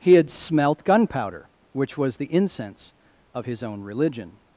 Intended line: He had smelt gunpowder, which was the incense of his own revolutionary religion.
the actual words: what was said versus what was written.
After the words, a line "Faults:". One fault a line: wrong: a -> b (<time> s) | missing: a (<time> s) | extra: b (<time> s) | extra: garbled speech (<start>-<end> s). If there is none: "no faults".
He had smelt gunpowder, which was the incense of his own religion.
Faults:
missing: revolutionary (3.8 s)